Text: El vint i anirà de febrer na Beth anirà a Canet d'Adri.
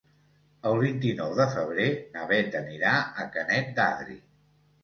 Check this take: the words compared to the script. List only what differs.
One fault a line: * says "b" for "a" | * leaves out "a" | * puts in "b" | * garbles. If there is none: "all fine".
* says "nou" for "anirà"